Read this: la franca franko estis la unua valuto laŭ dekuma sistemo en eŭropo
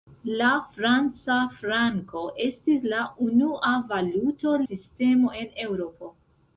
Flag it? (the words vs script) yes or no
yes